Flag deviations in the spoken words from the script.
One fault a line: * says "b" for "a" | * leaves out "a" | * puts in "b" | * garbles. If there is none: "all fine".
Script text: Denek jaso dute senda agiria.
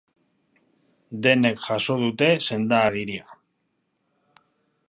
all fine